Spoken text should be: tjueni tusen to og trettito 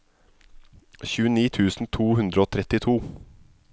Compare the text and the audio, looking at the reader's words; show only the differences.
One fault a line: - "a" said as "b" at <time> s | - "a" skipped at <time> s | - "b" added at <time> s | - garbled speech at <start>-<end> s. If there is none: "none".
- "hundre" added at 2.2 s